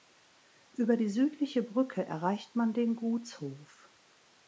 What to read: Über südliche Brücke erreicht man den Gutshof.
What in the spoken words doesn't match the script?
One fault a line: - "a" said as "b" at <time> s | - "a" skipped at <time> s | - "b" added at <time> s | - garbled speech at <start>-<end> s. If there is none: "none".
- "die" added at 1.0 s